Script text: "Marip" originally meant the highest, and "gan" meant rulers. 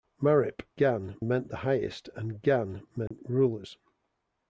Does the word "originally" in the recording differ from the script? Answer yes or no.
yes